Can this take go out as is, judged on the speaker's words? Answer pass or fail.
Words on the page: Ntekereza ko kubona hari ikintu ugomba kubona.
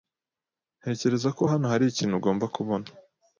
fail